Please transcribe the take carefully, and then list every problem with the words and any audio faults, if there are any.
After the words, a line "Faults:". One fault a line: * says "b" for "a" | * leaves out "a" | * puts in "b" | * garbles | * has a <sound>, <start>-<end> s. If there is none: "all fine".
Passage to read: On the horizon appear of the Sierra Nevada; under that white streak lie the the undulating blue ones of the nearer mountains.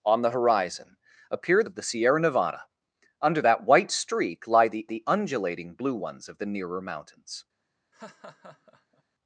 On the horizon appear of the Sierra Nevada; under that white streak lie the the undulating blue ones of the nearer mountains.
Faults:
* has a laugh, 7.9-9.0 s